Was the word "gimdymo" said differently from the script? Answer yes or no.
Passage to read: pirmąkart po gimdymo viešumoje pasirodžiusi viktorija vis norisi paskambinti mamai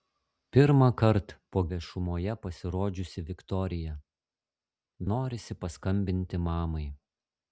yes